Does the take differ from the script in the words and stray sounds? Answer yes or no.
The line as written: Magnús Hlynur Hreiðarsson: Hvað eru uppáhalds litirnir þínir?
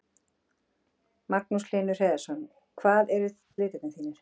yes